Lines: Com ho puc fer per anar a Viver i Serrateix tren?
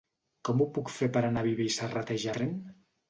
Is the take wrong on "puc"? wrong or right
right